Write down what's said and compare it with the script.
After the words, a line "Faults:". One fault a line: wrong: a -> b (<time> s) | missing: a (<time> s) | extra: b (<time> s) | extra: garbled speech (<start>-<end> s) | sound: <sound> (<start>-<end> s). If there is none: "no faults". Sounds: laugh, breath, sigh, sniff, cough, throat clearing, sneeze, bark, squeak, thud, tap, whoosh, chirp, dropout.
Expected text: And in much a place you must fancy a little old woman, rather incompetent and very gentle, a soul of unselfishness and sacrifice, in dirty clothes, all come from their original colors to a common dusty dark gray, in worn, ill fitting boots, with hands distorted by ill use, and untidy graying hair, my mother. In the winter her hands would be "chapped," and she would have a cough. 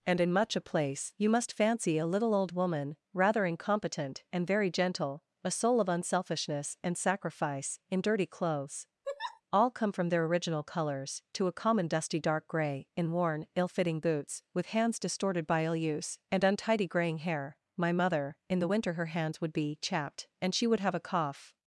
And in much a place you must fancy a little old woman, rather incompetent and very gentle, a soul of unselfishness and sacrifice, in dirty clothes, all come from their original colors to a common dusty dark gray, in worn, ill fitting boots, with hands distorted by ill use, and untidy graying hair, my mother. In the winter her hands would be "chapped," and she would have a cough.
Faults:
sound: laugh (9.0-9.4 s)